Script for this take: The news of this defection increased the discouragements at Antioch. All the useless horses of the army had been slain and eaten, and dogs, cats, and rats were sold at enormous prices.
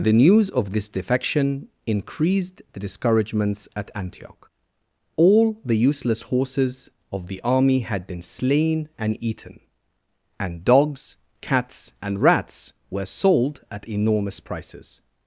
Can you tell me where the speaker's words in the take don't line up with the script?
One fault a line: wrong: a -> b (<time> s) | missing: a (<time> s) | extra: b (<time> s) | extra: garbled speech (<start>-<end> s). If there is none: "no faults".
no faults